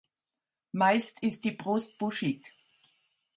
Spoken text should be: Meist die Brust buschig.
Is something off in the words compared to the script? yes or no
yes